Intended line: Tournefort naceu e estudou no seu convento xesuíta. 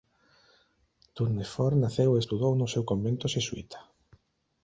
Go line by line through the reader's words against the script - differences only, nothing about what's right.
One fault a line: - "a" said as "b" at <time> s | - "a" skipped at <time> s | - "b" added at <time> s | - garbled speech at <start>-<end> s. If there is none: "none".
none